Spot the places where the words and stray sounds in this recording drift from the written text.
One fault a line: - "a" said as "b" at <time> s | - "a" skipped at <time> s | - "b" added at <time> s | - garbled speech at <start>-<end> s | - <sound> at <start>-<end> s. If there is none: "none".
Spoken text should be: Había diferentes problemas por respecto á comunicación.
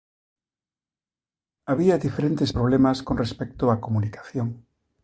- "por" said as "con" at 3.0 s